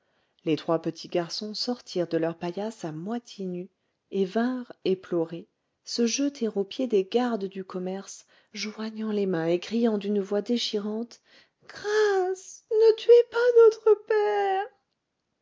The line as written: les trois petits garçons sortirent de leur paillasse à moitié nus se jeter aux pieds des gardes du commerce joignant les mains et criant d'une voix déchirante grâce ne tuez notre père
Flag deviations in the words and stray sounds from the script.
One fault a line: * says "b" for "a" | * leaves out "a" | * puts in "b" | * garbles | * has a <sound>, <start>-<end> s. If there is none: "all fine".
* puts in "et vinrent éplorés"
* puts in "pas"